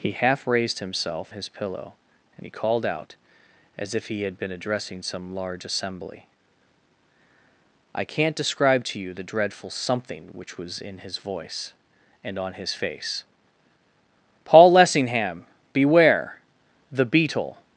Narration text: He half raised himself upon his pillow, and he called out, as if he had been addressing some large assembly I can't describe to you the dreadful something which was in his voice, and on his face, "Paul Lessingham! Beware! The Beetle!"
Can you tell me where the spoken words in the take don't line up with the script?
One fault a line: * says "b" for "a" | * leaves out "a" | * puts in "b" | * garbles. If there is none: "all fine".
* leaves out "upon"